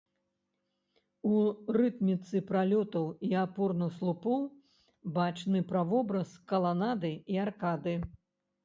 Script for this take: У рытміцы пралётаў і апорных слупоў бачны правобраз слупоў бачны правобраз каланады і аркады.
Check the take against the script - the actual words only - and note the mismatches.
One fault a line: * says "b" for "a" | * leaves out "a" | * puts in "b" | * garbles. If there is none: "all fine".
* leaves out "слупоў бачны правобраз"